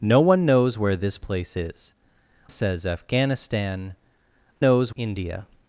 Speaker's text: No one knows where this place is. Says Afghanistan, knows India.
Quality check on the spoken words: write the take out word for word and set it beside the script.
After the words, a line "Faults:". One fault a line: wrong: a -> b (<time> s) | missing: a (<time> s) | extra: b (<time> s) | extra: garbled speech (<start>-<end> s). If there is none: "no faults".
No one knows where this place is. Says Afghanistan, knows India.
Faults:
no faults